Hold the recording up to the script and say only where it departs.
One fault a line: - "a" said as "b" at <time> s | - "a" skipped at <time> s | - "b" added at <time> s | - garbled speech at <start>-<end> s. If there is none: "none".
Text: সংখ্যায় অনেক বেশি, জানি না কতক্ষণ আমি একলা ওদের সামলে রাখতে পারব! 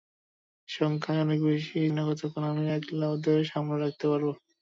- "জানি" skipped at 1.8 s